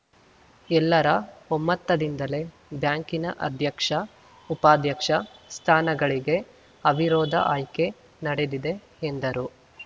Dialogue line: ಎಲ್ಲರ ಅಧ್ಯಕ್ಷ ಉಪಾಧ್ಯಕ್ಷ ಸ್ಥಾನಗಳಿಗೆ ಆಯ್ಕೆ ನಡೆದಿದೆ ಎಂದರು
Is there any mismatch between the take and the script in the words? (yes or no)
yes